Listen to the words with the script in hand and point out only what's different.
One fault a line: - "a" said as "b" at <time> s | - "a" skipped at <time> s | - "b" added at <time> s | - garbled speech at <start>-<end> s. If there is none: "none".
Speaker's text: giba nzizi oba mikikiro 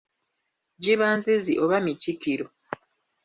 none